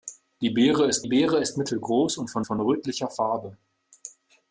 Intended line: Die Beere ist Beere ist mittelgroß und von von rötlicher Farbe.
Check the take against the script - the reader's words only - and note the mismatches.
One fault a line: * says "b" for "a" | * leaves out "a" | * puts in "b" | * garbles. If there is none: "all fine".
all fine